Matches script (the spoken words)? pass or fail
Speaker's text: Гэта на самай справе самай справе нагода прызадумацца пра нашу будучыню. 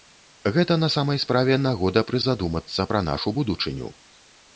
fail